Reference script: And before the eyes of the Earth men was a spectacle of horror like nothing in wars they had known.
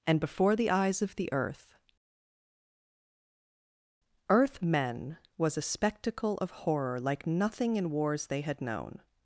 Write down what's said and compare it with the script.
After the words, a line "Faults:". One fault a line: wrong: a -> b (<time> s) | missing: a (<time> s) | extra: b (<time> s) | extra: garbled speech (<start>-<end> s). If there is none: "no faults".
And before the eyes of the Earth Earth men was a spectacle of horror like nothing in wars they had known.
Faults:
extra: Earth (4.3 s)